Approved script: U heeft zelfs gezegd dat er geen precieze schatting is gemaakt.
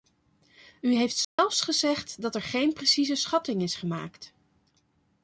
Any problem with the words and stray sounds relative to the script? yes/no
yes